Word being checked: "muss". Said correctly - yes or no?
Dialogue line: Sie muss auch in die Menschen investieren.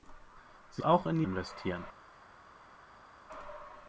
no